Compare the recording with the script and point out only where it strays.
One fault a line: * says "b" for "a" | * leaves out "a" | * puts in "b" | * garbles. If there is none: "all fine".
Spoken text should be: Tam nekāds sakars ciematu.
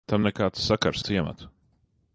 all fine